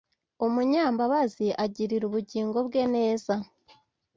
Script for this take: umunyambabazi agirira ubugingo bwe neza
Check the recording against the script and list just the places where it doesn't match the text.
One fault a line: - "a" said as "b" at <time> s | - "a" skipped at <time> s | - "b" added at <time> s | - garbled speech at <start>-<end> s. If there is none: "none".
none